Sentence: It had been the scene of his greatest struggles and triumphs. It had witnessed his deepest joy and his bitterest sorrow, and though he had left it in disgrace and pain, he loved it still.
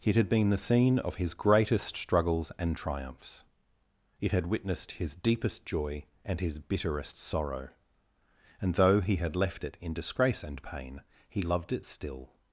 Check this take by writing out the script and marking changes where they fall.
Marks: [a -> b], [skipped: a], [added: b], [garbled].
It had been the scene of his greatest struggles and triumphs. It had witnessed his deepest joy and his bitterest sorrow, and though he had left it in disgrace and pain, he loved it still.